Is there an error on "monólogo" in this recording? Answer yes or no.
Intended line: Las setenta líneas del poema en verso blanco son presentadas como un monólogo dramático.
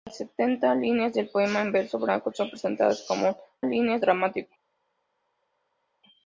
yes